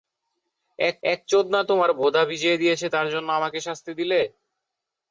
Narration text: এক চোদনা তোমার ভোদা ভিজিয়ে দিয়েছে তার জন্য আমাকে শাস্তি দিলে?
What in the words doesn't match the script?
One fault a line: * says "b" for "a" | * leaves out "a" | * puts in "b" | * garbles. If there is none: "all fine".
* puts in "এক"